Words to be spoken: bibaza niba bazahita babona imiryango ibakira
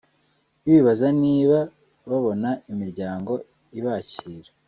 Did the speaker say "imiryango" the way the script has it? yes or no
yes